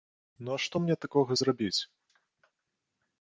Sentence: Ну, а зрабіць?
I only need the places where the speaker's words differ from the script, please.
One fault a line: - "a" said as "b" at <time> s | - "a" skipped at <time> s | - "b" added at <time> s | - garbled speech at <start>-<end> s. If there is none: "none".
- "што мне такога" added at 0.6 s